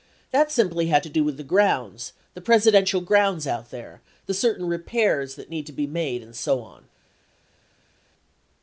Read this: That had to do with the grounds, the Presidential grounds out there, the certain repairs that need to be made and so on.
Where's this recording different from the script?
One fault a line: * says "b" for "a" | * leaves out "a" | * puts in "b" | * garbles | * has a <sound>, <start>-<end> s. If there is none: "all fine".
* puts in "simply"